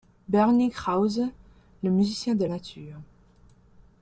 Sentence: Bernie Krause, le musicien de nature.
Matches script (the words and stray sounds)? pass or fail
pass